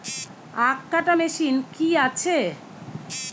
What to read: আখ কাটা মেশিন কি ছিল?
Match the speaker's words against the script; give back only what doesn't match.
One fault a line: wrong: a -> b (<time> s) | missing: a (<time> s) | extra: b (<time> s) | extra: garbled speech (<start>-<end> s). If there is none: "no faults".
wrong: ছিল -> আছে (2.1 s)